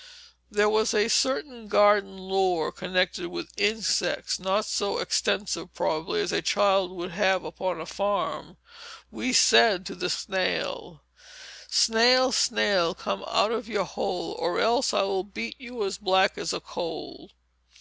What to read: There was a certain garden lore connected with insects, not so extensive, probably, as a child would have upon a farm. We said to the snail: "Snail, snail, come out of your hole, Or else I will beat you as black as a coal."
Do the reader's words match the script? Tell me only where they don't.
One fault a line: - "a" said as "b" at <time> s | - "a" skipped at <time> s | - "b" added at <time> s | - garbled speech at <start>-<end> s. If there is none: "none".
none